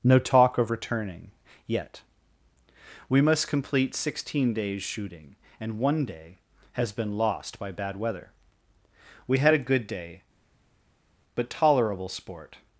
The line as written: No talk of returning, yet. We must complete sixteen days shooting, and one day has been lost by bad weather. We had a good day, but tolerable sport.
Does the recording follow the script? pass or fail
pass